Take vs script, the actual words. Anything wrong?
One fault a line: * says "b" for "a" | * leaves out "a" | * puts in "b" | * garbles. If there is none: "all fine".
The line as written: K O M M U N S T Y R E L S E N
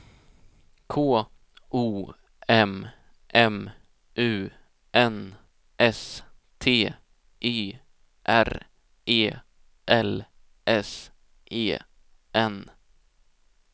all fine